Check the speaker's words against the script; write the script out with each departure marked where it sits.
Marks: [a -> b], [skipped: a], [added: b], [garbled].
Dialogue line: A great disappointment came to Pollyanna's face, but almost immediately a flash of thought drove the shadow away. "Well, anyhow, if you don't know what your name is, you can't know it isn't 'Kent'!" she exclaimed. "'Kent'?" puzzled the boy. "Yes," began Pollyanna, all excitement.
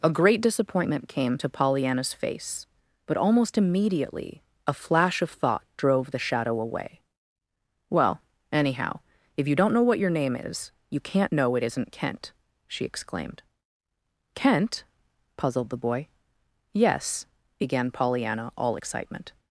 A great disappointment came to Pollyanna's face, but almost immediately a flash of thought drove the shadow away. "Well, anyhow, if you don't know what your name is, you can't know it isn't 'Kent'!" she exclaimed. "'Kent'?" puzzled the boy. "Yes," began Pollyanna, all excitement.